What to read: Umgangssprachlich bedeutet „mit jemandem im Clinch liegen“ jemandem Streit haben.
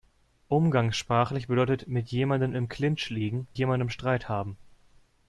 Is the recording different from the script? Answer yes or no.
no